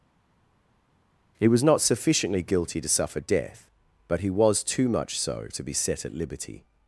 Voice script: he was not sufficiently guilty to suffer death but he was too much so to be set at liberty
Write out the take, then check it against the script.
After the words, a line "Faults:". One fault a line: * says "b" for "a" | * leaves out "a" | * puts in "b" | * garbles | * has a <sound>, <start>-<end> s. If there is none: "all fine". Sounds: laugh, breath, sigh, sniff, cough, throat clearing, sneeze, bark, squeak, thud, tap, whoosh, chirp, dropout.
he was not sufficiently guilty to suffer death but he was too much so to be set at liberty
Faults:
all fine